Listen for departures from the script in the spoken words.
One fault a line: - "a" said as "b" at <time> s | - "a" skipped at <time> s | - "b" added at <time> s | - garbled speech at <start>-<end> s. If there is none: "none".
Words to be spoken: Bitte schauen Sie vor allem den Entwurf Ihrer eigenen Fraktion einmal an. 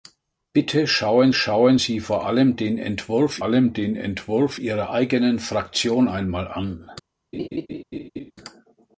- "schauen" added at 1.3 s
- "allem den Entwurf" added at 3.4 s